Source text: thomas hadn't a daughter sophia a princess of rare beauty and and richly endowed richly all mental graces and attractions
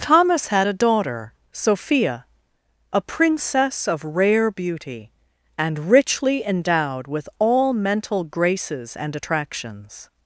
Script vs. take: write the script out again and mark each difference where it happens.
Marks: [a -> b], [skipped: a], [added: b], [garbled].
thomas [hadn't -> had] a daughter sophia a princess of rare beauty and [skipped: and] richly endowed [richly -> with] all mental graces and attractions